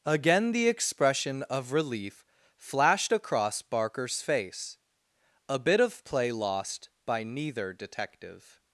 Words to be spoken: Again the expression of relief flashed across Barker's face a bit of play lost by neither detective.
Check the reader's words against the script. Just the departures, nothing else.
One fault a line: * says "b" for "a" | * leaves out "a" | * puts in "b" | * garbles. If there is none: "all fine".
all fine